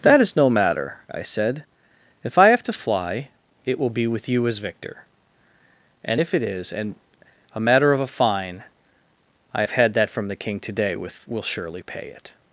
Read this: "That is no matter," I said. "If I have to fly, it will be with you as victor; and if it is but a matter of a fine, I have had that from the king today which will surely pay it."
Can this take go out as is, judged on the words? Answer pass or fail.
fail